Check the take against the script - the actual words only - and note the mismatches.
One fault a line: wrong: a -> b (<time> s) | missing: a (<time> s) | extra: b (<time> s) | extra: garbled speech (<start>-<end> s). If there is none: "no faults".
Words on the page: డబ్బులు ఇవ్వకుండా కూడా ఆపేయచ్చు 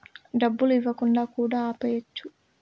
no faults